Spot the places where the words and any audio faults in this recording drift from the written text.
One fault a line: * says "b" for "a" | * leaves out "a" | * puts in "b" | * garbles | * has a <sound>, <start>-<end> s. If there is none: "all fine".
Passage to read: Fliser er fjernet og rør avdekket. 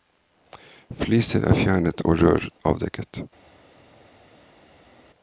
all fine